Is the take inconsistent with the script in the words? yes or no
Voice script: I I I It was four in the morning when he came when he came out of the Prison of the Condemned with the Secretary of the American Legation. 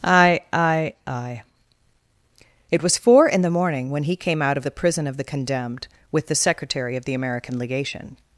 yes